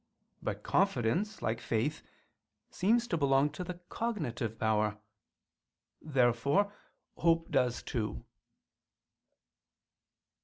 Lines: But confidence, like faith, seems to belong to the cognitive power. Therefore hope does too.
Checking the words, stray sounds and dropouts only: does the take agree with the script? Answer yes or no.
yes